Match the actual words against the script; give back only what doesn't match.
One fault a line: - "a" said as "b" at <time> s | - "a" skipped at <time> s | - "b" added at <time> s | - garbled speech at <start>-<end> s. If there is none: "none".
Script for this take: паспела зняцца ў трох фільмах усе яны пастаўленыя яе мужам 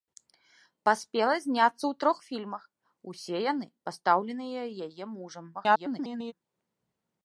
- garbled speech at 5.5-6.3 s